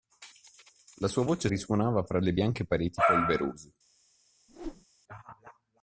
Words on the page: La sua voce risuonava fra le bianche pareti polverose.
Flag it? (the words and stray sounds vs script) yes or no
yes